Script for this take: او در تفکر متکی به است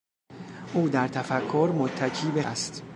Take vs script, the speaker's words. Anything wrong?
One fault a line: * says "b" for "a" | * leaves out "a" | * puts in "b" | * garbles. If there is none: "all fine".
all fine